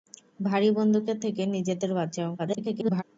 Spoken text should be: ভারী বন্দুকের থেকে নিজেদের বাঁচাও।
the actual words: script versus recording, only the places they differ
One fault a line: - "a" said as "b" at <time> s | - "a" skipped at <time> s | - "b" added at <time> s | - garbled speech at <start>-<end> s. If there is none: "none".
- garbled speech at 2.4-3.0 s